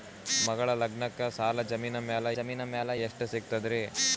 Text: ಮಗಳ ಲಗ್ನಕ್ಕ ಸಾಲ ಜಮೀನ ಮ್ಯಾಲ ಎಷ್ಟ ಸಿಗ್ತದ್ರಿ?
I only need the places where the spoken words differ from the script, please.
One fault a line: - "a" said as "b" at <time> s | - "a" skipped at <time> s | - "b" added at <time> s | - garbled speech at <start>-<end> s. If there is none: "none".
- "ಜಮೀನ ಮ್ಯಾಲ" added at 2.4 s